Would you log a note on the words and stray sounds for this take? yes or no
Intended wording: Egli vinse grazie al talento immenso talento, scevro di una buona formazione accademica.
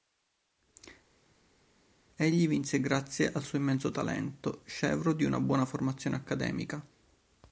yes